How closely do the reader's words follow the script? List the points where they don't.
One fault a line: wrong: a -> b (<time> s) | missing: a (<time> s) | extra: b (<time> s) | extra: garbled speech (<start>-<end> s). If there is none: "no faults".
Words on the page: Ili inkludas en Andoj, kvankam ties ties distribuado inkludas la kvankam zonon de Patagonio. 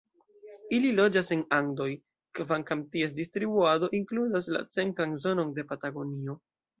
wrong: inkludas -> loĝas (1.0 s)
missing: ties (3.2 s)
wrong: kvankam -> centran (4.8 s)